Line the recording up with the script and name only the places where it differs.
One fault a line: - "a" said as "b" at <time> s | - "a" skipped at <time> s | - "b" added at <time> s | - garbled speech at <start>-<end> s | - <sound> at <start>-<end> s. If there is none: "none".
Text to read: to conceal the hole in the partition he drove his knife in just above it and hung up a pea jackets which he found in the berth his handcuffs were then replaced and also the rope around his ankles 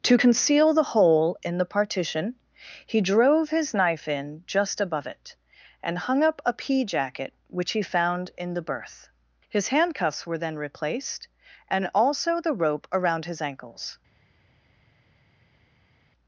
- "jackets" said as "jacket" at 6.8 s